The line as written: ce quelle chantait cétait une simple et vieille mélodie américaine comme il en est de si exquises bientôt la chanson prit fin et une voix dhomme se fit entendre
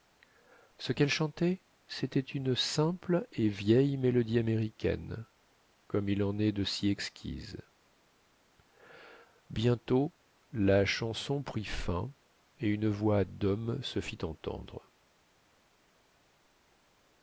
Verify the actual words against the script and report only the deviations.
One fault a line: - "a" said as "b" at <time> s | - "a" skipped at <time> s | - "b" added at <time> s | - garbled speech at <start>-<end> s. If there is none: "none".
none